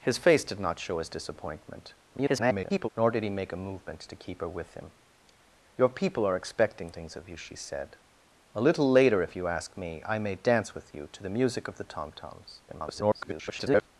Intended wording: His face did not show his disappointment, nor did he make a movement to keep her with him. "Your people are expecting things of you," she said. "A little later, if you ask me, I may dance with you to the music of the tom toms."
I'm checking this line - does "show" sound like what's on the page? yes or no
yes